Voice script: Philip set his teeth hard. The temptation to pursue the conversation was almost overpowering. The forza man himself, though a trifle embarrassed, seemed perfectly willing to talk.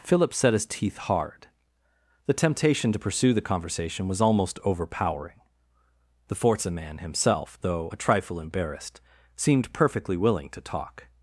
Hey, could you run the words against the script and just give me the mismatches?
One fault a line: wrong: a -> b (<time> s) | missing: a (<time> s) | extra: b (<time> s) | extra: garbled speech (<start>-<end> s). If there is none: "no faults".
no faults